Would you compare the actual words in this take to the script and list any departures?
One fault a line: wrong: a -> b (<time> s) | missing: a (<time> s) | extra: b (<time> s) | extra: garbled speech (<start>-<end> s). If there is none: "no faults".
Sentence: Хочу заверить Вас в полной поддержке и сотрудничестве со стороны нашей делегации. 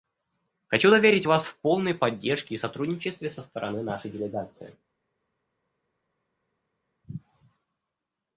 no faults